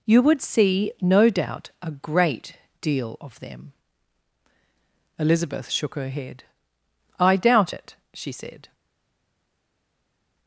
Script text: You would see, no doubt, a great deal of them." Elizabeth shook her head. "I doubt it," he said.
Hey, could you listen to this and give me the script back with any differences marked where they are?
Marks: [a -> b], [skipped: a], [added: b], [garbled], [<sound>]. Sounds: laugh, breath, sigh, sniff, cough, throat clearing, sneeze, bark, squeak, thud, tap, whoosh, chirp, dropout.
You would see, no doubt, a great deal of them." Elizabeth shook her head. "I doubt it," [he -> she] said.